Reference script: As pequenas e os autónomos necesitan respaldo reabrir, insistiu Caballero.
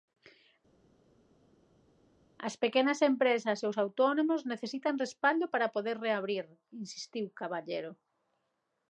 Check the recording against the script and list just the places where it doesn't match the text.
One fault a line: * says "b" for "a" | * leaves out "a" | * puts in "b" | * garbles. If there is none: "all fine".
* puts in "empresas"
* puts in "para poder"